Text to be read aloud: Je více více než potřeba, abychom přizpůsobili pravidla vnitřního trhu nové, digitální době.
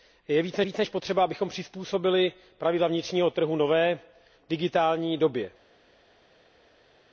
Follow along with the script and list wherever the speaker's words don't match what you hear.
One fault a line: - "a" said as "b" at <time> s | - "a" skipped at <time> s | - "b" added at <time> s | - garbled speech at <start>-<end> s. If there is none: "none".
none